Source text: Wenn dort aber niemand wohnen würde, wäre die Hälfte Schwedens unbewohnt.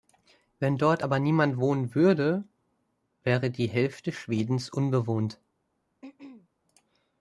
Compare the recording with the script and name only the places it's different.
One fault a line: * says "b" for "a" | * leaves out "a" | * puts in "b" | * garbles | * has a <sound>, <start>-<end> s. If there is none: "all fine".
* has a throat clearing, 6.0-6.5 s